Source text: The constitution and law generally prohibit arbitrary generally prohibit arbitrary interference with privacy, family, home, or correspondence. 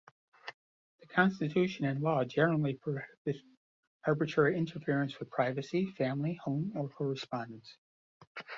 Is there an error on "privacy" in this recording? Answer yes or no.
no